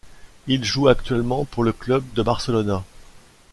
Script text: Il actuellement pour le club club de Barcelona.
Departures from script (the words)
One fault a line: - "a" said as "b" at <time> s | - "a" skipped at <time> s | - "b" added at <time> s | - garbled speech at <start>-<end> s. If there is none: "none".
- "joue" added at 0.6 s
- "club" skipped at 2.0 s